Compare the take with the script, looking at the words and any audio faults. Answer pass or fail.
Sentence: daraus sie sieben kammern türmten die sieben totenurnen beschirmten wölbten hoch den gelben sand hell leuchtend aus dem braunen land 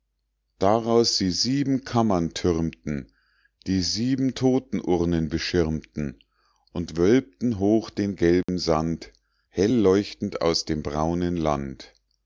fail